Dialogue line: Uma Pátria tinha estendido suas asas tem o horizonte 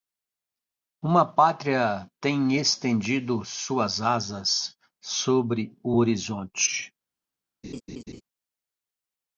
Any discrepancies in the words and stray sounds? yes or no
yes